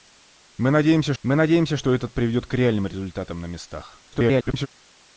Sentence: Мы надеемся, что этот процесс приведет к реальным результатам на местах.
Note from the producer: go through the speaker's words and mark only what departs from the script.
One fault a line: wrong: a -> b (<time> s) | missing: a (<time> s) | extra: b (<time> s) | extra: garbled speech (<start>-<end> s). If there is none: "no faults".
extra: мы надеемся (1.2 s)
missing: процесс (2.1 s)
extra: garbled speech (4.1-4.7 s)